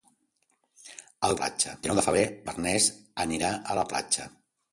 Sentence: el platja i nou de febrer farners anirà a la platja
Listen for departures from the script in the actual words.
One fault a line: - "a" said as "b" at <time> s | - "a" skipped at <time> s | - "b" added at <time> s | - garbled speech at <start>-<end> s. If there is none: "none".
none